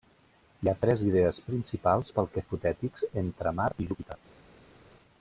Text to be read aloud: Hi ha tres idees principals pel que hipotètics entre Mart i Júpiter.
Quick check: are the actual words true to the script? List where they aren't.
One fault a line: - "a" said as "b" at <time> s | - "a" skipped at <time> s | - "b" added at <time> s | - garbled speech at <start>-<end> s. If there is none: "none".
none